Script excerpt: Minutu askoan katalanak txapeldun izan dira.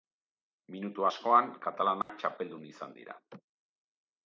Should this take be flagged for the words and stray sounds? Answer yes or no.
yes